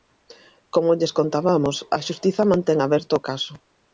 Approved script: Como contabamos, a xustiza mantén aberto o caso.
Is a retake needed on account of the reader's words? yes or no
yes